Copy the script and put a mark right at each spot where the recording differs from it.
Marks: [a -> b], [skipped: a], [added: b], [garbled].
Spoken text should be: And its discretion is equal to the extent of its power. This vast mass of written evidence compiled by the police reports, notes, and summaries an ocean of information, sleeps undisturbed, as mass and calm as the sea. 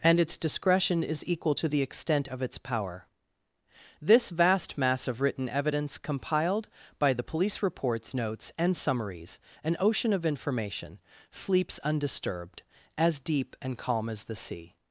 And its discretion is equal to the extent of its power. This vast mass of written evidence compiled by the police reports, notes, and summaries an ocean of information, sleeps undisturbed, as [mass -> deep] and calm as the sea.